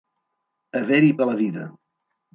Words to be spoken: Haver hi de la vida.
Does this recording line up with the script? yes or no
yes